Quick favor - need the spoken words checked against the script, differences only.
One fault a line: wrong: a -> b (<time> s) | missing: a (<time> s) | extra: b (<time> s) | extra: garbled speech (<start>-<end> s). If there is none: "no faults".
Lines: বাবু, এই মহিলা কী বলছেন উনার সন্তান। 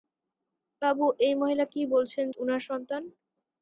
no faults